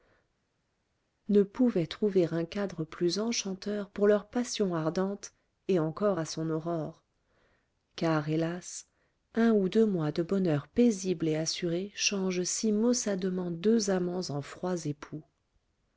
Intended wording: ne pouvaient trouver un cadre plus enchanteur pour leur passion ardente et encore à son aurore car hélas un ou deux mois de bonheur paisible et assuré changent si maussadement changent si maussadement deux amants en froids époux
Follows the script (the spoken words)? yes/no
no